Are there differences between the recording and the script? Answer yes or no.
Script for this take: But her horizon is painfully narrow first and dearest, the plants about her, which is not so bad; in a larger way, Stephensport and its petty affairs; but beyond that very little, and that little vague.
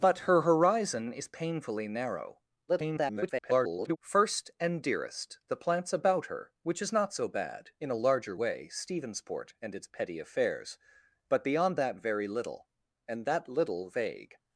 yes